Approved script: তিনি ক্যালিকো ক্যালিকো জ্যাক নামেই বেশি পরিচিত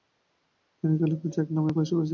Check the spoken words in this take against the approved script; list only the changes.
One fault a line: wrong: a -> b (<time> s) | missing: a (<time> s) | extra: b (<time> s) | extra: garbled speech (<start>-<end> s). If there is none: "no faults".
missing: ক্যালিকো (1.3 s)